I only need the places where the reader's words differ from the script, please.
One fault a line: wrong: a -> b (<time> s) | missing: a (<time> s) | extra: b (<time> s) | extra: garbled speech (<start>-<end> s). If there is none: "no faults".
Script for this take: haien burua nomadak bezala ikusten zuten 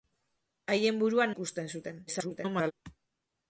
missing: nomadak bezala (1.3 s)
extra: garbled speech (2.1-2.7 s)